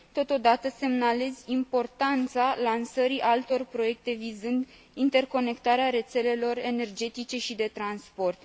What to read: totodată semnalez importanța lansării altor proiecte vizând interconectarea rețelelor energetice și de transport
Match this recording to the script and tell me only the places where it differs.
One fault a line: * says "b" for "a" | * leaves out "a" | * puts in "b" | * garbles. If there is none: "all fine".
all fine